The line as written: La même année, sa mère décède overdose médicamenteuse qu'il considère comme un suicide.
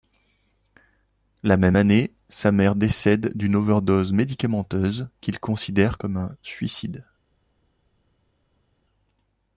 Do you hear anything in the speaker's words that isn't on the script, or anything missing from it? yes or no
yes